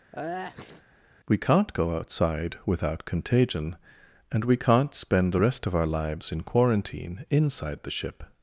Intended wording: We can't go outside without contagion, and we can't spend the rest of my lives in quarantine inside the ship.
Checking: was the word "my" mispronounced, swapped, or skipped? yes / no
yes